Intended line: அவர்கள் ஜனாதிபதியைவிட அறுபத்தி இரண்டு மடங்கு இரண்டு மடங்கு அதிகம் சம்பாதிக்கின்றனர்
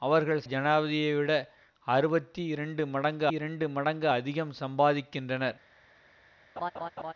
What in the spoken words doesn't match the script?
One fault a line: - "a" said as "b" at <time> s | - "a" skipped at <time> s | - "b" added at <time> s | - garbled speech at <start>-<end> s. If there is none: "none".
none